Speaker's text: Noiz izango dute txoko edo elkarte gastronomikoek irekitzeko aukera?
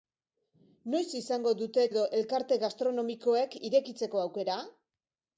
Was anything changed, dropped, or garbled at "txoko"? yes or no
yes